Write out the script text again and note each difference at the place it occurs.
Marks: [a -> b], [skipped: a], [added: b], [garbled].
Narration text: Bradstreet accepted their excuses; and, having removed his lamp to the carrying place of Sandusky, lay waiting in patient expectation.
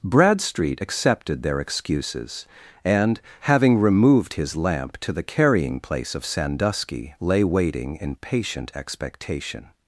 Bradstreet accepted their excuses; and, having removed his lamp to the carrying place of Sandusky, lay waiting in patient expectation.